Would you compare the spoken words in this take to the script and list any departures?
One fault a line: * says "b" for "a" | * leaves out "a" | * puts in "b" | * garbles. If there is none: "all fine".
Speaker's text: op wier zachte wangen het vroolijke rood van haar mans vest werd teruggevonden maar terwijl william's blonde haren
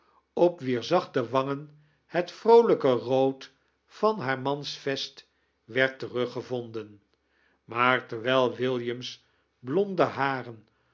all fine